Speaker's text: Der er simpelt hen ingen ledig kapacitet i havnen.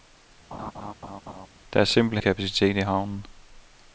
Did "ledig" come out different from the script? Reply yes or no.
yes